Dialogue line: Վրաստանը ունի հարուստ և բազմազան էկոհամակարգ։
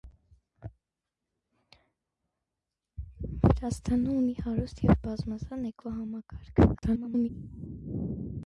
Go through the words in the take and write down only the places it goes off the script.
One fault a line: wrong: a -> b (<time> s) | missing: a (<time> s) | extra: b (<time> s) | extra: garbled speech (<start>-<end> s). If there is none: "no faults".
extra: garbled speech (6.7-7.3 s)